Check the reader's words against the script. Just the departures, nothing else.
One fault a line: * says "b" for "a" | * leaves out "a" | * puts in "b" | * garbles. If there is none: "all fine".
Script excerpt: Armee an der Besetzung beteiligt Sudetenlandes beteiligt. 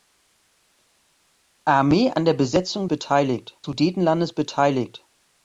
all fine